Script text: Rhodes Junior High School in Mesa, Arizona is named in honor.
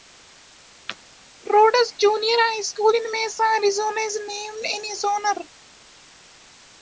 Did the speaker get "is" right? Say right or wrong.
right